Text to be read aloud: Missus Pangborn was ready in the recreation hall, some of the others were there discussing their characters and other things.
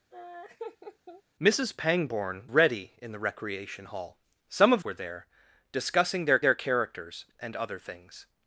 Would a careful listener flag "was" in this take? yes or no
yes